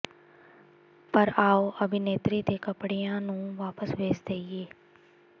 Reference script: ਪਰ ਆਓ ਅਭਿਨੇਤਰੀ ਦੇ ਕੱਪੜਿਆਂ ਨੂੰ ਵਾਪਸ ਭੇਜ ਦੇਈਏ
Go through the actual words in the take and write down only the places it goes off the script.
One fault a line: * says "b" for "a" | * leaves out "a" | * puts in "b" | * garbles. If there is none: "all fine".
all fine